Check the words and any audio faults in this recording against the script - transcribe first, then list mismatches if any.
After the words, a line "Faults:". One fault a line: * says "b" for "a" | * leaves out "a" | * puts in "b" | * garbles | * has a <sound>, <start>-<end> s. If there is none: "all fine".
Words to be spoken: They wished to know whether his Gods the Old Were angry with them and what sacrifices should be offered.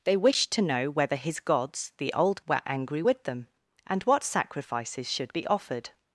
They wished to know whether his Gods the Old Were angry with them and what sacrifices should be offered.
Faults:
all fine